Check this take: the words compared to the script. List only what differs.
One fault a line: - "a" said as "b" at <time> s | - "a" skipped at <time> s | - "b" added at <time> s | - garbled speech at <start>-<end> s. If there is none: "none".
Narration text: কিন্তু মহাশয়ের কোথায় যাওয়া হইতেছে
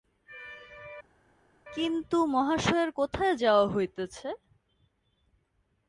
none